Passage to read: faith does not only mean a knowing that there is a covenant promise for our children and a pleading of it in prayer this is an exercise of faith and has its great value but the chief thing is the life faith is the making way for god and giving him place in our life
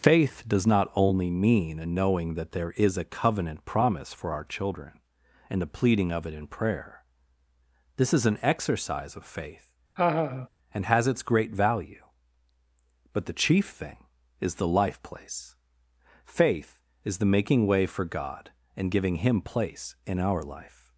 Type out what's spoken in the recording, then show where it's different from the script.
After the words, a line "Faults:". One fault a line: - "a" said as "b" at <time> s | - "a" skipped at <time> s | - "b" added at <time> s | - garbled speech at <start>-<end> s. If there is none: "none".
faith does not only mean a knowing that there is a covenant promise for our children and the pleading of it in prayer this is an exercise of faith and has its great value but the chief thing is the life place faith is the making way for god and giving him place in our life
Faults:
- "a" said as "the" at 5.6 s
- "place" added at 15.0 s